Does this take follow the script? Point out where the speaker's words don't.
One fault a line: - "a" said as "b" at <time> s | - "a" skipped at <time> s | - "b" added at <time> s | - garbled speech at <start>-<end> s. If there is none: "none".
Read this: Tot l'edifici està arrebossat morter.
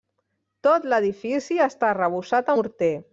none